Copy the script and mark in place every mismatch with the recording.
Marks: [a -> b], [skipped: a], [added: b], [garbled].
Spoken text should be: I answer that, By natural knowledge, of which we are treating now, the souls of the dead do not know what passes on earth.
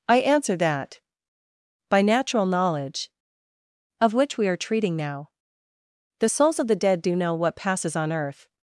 I answer that, By natural knowledge, of which we are treating now, the souls of the dead do [skipped: not] know what passes on earth.